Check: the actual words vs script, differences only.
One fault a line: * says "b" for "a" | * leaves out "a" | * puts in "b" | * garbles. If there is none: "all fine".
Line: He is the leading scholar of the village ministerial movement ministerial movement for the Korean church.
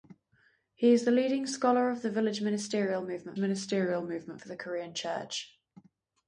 all fine